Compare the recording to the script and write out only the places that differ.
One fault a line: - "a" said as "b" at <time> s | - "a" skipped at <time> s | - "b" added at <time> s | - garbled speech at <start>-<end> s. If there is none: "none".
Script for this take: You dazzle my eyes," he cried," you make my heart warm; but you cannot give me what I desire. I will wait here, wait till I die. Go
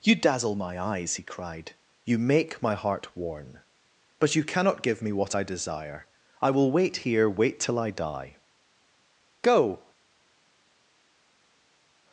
- "warm" said as "worn" at 3.2 s